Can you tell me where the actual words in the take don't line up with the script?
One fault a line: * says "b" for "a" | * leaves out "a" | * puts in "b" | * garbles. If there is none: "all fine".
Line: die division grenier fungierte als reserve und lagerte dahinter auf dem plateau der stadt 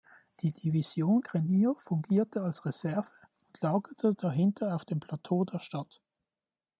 all fine